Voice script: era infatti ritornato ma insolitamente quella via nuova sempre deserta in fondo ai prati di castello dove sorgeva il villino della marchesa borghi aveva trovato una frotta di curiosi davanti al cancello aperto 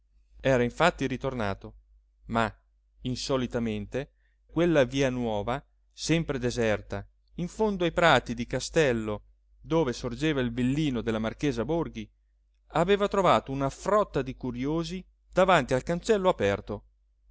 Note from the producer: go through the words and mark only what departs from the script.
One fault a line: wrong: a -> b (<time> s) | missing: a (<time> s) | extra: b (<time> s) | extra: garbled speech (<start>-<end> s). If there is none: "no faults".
no faults